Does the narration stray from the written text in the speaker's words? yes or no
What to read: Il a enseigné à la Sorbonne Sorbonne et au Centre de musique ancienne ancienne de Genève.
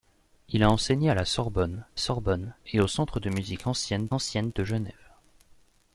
no